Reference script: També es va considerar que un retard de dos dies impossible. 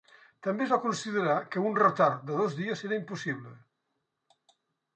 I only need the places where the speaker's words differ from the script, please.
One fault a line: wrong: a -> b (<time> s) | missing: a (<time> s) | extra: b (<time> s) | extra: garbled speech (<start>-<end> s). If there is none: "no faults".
extra: era (2.9 s)